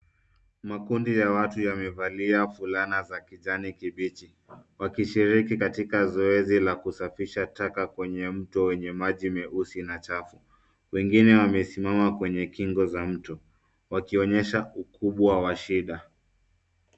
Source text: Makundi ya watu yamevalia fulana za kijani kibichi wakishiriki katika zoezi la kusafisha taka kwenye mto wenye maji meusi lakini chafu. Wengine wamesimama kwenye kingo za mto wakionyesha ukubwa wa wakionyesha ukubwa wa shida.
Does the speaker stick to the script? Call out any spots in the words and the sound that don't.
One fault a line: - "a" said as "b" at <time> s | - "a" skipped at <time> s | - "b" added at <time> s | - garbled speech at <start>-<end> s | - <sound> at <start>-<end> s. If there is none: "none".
- "lakini" said as "na" at 9.8 s
- "wakionyesha ukubwa wa" skipped at 15.6 s